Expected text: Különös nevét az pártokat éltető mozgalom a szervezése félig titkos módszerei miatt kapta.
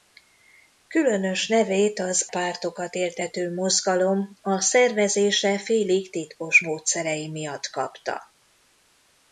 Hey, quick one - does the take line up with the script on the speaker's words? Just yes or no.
yes